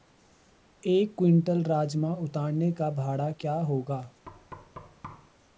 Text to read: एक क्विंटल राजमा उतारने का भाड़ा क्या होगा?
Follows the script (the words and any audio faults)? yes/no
no